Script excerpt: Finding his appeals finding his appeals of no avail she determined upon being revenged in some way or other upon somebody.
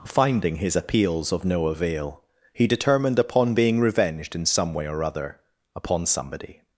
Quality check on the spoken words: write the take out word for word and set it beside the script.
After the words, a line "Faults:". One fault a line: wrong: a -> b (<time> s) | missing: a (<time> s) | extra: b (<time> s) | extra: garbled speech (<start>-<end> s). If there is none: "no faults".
Finding his appeals of no avail he determined upon being revenged in some way or other upon somebody.
Faults:
missing: finding his appeals (1.3 s)
wrong: she -> he (2.5 s)